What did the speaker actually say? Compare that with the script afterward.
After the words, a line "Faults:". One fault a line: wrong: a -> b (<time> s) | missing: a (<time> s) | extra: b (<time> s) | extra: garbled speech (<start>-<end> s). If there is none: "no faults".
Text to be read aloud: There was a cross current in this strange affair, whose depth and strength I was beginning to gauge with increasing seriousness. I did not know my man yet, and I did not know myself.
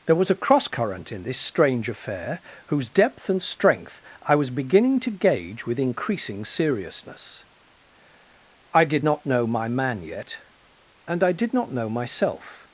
There was a cross current in this strange affair, whose depth and strength I was beginning to gauge with increasing seriousness. I did not know my man yet, and I did not know myself.
Faults:
no faults